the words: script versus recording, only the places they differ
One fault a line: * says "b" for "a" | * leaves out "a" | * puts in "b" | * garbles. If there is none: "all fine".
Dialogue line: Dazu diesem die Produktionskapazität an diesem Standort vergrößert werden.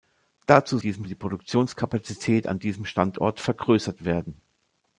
all fine